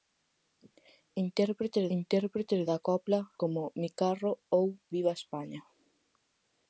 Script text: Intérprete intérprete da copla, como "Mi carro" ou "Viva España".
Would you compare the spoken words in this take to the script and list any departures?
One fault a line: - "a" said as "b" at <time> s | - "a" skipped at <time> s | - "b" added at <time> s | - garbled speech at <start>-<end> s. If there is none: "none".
none